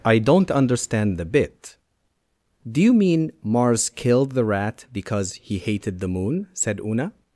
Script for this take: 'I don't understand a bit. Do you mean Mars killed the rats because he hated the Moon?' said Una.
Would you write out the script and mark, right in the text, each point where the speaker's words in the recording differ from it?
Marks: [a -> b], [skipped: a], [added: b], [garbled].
'I don't understand [a -> the] bit. Do you mean Mars killed the [rats -> rat] because he hated the Moon?' said Una.